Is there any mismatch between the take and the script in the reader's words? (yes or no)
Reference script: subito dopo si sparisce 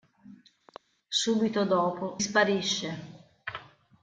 yes